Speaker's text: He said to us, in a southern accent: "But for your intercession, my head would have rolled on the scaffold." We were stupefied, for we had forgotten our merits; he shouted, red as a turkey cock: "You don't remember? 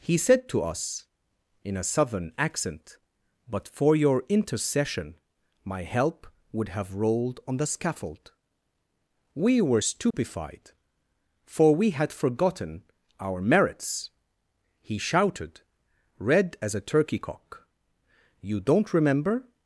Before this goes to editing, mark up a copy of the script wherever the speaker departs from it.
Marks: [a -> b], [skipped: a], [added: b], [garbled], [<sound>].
He said to us, in a southern accent: "But for your intercession, my [head -> help] would have rolled on the scaffold." We were stupefied, [dropout] for we had forgotten our merits; he shouted, red as a turkey cock: "You don't remember?